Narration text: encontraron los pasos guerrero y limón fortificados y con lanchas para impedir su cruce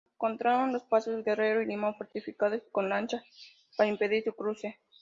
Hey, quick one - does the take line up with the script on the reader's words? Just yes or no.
yes